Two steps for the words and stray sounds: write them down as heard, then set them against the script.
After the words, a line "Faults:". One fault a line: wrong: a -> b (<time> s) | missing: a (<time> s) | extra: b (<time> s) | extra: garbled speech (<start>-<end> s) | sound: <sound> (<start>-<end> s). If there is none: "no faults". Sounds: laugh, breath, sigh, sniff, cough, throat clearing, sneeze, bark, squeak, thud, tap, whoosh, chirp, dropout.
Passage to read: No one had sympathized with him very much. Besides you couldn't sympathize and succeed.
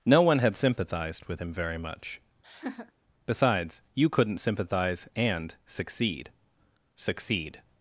No one had sympathized with him very much. Besides you couldn't sympathize and succeed succeed.
Faults:
sound: laugh (2.4-2.9 s)
extra: succeed (6.9 s)